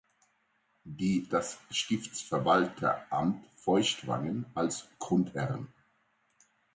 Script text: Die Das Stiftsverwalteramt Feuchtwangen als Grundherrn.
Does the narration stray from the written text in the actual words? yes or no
no